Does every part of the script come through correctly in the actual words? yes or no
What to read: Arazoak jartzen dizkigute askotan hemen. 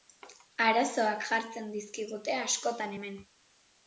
yes